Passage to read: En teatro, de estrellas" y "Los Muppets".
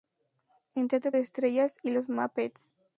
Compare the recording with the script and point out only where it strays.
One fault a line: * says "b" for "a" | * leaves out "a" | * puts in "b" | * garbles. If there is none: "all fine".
all fine